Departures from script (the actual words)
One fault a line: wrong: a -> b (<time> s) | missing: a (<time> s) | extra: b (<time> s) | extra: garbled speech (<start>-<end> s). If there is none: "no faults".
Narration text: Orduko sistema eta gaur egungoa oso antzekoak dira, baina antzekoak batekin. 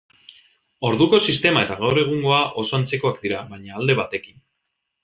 wrong: antzekoak -> alde (3.8 s)